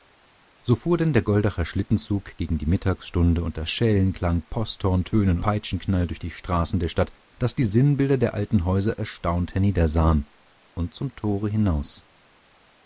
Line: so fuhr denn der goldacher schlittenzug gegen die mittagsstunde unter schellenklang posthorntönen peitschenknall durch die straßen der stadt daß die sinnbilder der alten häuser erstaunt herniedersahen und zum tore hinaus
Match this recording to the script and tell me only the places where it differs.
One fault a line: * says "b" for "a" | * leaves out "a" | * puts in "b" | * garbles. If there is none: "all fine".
all fine